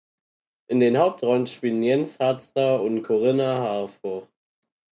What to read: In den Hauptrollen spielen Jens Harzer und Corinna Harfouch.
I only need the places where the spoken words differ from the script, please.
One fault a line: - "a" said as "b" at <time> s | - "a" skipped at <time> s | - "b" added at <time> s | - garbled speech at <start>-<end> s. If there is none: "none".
none